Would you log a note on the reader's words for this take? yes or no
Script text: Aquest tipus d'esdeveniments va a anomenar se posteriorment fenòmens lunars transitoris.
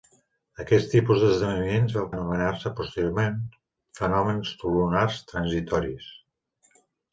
no